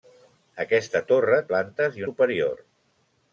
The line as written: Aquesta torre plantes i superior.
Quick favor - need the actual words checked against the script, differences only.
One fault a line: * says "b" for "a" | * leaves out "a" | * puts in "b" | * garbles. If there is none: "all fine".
all fine